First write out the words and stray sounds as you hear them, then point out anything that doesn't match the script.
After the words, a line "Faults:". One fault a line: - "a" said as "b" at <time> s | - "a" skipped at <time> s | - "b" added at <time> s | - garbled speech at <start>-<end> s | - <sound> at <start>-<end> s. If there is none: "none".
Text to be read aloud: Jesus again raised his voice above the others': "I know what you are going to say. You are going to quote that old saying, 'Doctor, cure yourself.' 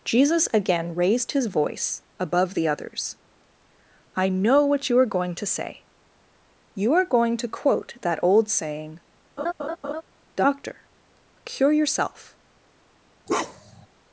Jesus again raised his voice above the others': "I know what you are going to say. You are going to quote that old saying, 'Doctor, cure yourself.'
Faults:
- laugh at 9.4-10.0 s
- bark at 13.3-13.9 s